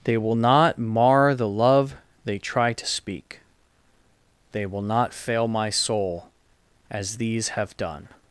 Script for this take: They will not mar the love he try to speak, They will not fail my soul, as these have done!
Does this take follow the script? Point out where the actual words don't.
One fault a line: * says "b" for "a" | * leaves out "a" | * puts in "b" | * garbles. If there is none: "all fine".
* says "they" for "he"